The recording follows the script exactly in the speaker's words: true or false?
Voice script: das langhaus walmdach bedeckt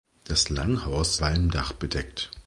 true